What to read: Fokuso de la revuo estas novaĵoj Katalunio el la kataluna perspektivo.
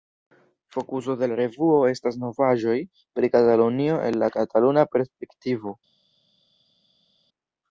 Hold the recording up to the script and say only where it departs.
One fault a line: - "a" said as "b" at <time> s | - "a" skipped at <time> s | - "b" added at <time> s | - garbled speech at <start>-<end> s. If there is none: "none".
- "pri" added at 3.2 s